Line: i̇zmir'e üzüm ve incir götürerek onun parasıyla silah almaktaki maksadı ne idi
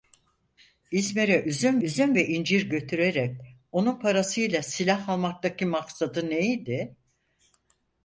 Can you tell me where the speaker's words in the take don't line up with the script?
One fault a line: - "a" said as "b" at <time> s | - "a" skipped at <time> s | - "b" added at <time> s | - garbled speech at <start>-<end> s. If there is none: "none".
- "üzüm" added at 1.8 s